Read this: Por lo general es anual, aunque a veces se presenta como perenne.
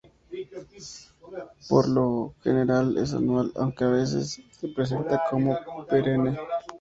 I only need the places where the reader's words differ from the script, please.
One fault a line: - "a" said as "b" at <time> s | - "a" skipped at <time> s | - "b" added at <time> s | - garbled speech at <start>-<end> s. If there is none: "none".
none